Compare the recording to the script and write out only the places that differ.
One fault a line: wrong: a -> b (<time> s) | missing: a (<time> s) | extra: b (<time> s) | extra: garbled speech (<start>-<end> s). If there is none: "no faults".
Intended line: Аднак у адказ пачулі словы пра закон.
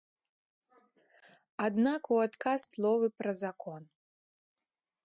missing: пачулі (2.6 s)